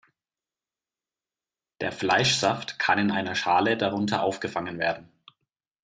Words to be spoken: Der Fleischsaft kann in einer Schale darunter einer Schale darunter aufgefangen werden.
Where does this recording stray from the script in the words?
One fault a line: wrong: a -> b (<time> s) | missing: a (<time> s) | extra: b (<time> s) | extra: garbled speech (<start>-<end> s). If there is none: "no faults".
missing: einer Schale darunter (4.2 s)